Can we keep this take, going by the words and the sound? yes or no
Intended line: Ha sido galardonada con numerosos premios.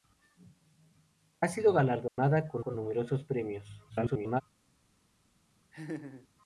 no